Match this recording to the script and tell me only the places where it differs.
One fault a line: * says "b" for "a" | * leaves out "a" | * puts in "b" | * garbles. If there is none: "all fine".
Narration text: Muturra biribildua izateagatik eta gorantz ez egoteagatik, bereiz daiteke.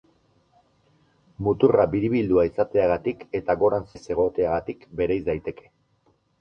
all fine